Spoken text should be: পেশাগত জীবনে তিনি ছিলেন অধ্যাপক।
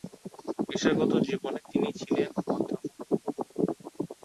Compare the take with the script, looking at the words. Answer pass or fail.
pass